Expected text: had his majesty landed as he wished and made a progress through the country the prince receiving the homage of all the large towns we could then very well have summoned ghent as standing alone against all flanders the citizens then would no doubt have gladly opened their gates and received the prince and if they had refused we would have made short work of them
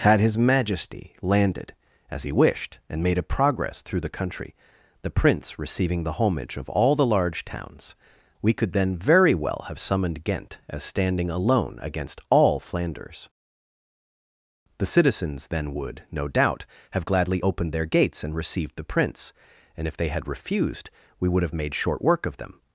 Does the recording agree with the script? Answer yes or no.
yes